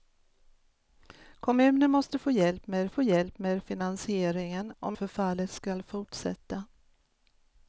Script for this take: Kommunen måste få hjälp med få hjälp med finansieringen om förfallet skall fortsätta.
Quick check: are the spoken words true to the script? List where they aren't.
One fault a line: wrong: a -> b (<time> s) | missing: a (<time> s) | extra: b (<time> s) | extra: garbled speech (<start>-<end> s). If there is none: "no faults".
no faults